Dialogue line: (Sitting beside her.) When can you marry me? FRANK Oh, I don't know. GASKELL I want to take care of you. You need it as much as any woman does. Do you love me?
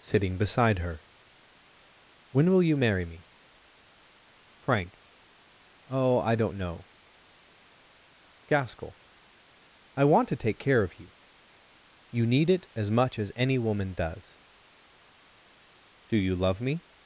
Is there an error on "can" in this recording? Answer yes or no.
yes